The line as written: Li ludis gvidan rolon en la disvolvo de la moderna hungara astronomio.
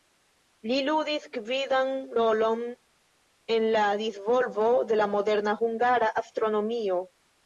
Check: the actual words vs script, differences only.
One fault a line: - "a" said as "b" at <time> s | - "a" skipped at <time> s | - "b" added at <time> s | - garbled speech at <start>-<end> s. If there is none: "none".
none